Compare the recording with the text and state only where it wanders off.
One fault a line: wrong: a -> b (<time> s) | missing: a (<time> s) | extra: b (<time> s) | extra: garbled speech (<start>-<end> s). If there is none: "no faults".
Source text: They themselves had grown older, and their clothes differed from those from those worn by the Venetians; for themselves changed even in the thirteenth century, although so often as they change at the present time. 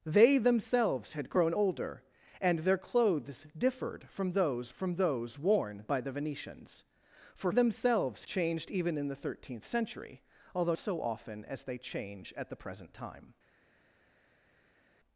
no faults